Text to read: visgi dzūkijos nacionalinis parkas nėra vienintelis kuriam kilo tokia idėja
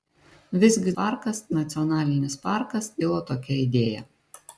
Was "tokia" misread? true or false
false